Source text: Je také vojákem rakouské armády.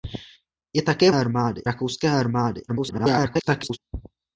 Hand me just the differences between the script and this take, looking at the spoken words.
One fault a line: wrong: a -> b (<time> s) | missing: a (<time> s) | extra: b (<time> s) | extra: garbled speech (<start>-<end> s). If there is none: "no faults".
wrong: vojákem -> armády (1.1 s)
extra: garbled speech (2.7-3.8 s)